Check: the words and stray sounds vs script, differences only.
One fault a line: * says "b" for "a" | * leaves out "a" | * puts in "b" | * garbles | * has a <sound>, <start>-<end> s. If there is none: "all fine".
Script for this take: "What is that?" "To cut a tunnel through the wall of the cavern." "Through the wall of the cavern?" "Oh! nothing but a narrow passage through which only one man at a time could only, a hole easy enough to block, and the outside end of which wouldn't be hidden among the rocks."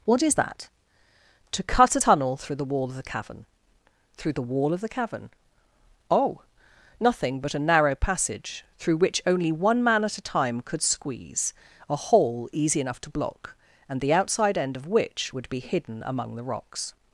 * says "squeeze" for "only"
* says "would" for "wouldn't"